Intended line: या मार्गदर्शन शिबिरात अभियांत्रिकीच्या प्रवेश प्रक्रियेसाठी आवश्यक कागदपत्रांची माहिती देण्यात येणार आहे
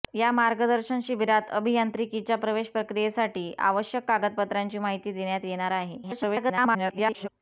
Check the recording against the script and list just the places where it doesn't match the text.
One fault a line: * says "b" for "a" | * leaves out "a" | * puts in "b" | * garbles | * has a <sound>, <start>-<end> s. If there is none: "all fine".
* garbles